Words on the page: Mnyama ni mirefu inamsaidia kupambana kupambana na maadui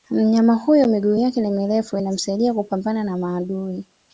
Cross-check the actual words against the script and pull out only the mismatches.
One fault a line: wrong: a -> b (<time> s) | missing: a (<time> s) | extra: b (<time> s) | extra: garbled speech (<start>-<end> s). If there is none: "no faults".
extra: huyo miguu yake (0.6 s)
missing: kupambana (3.0 s)